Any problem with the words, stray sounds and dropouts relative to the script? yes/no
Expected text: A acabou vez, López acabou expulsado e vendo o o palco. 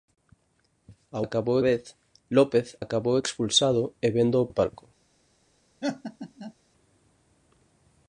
yes